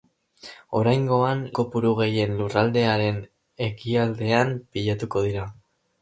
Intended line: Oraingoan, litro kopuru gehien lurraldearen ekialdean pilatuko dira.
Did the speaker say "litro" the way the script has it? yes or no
no